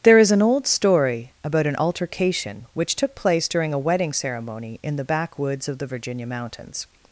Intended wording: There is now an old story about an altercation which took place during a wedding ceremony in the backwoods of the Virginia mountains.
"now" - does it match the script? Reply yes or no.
no